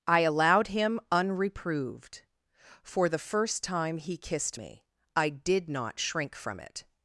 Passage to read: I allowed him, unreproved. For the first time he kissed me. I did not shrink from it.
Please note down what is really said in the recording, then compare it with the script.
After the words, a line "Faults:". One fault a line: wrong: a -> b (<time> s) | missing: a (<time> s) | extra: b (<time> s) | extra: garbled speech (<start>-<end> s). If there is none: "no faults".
I allowed him, unreproved. For the first time he kissed me. I did not shrink from it.
Faults:
no faults